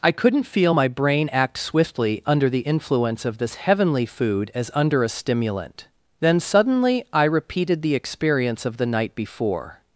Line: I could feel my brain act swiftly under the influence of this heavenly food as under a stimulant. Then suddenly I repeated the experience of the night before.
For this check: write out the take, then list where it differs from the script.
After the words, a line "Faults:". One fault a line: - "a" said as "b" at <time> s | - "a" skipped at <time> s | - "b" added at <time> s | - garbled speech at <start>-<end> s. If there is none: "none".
I couldn't feel my brain act swiftly under the influence of this heavenly food as under a stimulant. Then suddenly I repeated the experience of the night before.
Faults:
- "could" said as "couldn't" at 0.1 s